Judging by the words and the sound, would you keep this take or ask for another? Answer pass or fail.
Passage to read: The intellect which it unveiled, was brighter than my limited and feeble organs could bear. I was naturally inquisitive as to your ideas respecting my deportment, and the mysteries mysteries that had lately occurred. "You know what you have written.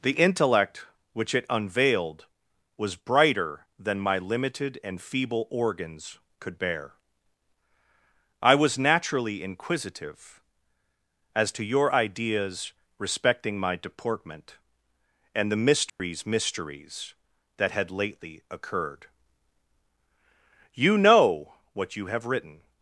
fail